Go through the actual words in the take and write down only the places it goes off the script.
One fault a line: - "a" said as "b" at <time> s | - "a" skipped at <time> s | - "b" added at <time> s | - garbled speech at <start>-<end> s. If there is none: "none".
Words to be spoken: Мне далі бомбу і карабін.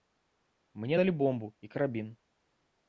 none